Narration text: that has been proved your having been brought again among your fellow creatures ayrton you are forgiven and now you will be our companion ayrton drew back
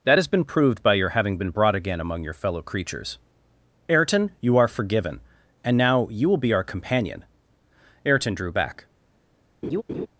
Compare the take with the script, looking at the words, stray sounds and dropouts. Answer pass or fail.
fail